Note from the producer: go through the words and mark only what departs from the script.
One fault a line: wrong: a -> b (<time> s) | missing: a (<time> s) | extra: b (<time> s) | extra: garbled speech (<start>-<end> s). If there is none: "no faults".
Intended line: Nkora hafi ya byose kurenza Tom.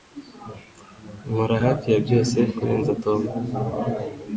no faults